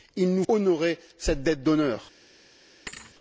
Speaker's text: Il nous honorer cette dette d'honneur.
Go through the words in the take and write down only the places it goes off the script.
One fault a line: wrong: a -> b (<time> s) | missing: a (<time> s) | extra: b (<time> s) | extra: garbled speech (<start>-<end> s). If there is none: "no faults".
no faults